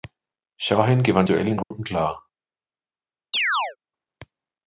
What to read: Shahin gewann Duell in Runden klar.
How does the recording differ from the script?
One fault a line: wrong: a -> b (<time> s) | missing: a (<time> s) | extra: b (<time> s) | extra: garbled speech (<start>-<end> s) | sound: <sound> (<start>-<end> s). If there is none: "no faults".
sound: dropout (1.6-1.7 s)
sound: chirp (3.3-3.8 s)